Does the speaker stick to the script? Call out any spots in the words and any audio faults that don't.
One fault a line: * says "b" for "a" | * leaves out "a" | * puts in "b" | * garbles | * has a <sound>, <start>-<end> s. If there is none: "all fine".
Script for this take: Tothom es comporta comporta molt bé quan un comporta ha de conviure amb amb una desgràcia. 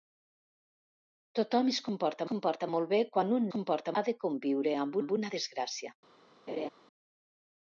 * has a laugh, 6.5-6.7 s